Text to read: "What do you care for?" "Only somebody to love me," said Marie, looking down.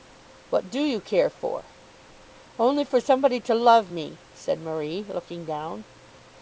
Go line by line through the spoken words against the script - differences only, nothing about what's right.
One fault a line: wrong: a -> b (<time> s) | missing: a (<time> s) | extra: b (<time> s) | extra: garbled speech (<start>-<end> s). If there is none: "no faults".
extra: for (2.9 s)